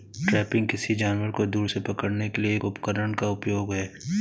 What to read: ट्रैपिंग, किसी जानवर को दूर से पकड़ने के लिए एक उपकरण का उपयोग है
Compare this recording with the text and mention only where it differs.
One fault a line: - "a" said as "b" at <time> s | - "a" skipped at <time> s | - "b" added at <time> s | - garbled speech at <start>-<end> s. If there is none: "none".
none